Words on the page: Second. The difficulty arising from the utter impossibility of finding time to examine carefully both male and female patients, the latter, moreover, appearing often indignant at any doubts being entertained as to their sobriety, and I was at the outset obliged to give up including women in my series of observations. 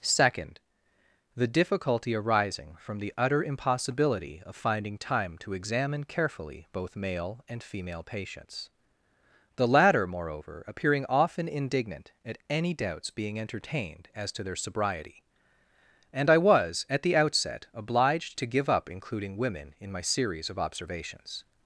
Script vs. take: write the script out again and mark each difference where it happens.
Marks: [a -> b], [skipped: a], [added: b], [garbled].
Second. The difficulty arising from the utter impossibility of finding time to examine carefully both male and female patients, the latter, moreover, appearing often indignant at any doubts being entertained as to their sobriety, and I was at the outset obliged to give up including women in my series of observations.